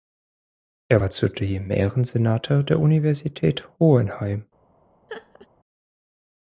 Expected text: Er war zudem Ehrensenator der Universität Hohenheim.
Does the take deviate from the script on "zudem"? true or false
false